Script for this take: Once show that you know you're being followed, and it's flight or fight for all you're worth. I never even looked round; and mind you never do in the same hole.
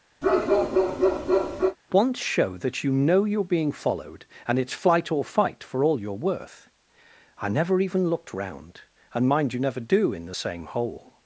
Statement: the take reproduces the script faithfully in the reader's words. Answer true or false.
true